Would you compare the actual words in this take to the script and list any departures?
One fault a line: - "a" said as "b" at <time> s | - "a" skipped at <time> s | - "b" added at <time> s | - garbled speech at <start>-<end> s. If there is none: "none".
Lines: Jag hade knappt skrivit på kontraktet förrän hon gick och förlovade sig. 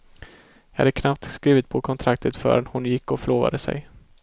none